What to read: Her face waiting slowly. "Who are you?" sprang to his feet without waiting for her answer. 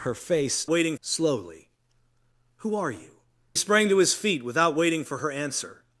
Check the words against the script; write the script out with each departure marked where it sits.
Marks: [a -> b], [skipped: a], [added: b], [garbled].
Her face waiting slowly. "Who are you?" sprang to his feet without waiting for her answer.